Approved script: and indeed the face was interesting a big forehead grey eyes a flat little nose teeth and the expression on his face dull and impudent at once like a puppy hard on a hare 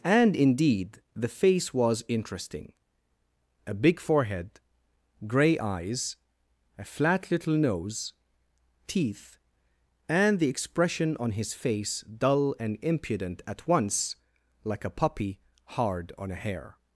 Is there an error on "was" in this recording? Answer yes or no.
no